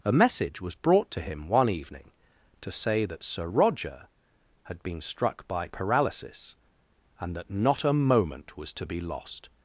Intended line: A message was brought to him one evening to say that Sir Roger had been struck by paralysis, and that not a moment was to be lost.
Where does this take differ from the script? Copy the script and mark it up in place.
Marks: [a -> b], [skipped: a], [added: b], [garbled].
A message was brought to him one evening to say that Sir Roger had been struck by paralysis, and that not a moment was to be lost.